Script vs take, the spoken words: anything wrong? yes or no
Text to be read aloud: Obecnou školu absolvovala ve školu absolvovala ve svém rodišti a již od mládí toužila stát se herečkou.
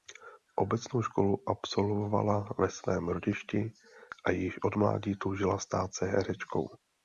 yes